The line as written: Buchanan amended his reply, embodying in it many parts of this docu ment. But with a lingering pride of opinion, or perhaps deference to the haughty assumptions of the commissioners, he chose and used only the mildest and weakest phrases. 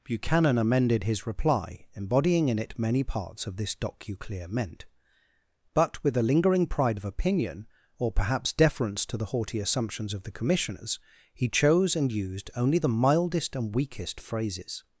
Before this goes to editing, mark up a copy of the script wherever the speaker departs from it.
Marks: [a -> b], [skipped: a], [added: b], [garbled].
Buchanan amended his reply, embodying in it many parts of this docu [ment. -> clear meant] But with a lingering pride of opinion, or perhaps deference to the haughty assumptions of the commissioners, he chose and used only the mildest and weakest phrases.